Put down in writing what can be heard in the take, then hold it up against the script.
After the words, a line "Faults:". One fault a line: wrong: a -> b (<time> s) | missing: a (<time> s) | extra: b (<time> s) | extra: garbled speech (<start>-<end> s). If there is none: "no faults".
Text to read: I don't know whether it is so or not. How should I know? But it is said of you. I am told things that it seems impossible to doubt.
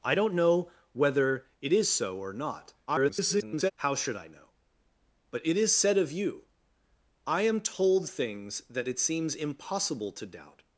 I don't know whether it is so or not. [garbled] How should I know? But it is said of you. I am told things that it seems impossible to doubt.
Faults:
extra: garbled speech (2.9-3.7 s)